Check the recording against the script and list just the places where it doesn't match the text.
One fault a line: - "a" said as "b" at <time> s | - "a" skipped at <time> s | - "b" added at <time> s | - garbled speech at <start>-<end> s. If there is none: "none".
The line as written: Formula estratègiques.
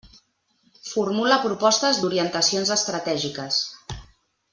- "propostes d'orientacions" added at 1.4 s